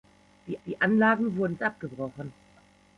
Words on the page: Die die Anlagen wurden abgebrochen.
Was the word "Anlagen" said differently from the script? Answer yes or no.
no